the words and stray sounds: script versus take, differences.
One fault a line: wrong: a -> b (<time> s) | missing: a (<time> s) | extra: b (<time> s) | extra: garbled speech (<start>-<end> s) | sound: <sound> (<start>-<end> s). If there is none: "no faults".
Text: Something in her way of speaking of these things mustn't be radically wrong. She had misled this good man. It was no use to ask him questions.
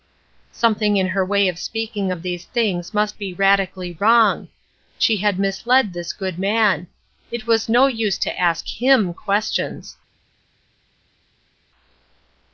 wrong: mustn't -> must (2.9 s)